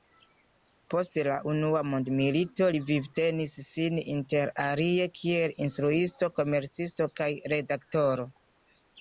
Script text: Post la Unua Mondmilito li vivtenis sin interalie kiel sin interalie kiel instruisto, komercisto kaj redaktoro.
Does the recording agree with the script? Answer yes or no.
no